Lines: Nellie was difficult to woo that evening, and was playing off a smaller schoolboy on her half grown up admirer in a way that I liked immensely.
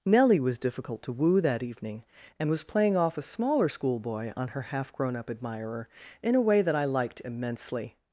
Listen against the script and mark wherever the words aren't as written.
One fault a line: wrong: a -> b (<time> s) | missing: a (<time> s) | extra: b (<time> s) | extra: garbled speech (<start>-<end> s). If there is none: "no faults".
no faults